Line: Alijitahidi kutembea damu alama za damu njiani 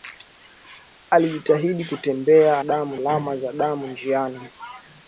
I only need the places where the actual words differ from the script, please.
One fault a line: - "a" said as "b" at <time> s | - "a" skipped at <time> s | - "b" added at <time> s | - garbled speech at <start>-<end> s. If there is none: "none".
none